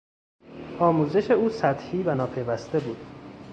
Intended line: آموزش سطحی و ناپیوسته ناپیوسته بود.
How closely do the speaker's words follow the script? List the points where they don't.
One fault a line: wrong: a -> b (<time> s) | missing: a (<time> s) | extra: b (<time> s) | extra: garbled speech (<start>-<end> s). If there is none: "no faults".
extra: او (1.3 s)
missing: ناپیوسته (2.8 s)